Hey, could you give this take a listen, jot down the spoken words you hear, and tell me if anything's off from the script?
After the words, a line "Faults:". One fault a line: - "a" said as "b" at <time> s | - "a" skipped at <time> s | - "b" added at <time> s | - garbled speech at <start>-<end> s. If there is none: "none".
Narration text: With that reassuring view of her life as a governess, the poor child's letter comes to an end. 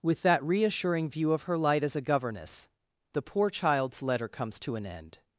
With that reassuring view of her light as a governess, the poor child's letter comes to an end.
Faults:
- "life" said as "light" at 1.6 s